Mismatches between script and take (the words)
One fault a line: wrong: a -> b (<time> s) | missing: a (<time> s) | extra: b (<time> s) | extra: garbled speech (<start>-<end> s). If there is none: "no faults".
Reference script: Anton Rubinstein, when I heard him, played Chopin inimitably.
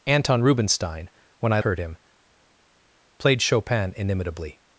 no faults